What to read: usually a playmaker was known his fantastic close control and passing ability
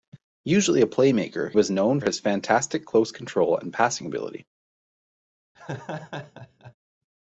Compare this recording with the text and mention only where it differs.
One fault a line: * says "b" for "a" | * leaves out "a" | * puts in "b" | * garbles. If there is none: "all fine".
all fine